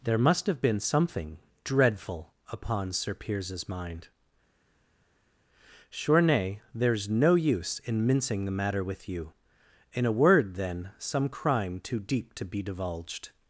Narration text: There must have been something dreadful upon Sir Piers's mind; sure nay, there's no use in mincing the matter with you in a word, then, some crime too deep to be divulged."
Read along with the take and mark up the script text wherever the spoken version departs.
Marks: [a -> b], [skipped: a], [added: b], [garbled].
There must have been something dreadful upon Sir Piers's mind; sure nay, there's no use in mincing the matter with you in a word, then, some crime too deep to be divulged."